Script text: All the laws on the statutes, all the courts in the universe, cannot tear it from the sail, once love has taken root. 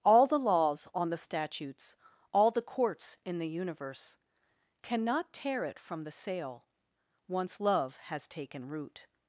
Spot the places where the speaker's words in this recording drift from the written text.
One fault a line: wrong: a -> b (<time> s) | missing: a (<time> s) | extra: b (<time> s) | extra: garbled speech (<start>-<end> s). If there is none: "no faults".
no faults